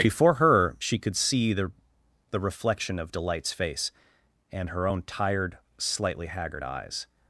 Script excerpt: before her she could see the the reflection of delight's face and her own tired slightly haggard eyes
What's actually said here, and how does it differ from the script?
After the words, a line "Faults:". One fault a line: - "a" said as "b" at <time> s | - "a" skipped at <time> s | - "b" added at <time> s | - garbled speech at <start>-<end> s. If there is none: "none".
before her she could see the the reflection of delight's face and her own tired slightly haggard eyes
Faults:
none